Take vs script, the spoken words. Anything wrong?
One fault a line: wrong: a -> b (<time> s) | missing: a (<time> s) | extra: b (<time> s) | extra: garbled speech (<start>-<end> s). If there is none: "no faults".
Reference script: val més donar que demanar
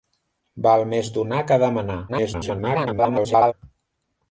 extra: garbled speech (2.1-3.5 s)